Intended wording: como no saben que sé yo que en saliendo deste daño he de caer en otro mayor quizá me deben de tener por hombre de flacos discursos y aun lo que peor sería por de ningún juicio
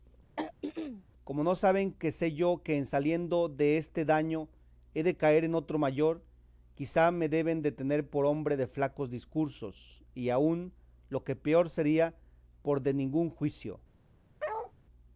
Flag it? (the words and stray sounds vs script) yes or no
yes